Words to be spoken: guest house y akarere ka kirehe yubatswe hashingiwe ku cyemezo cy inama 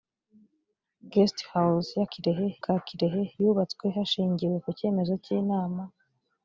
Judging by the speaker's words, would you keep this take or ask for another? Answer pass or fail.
fail